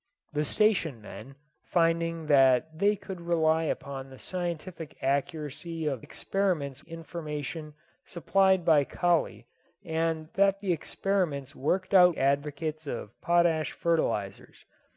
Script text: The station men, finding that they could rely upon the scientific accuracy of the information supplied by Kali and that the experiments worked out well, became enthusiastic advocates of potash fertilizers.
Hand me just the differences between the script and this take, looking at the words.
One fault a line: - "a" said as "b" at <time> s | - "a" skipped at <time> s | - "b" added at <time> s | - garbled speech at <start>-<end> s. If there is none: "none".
- "the" said as "experiments" at 6.0 s
- "well became enthusiastic" skipped at 12.1 s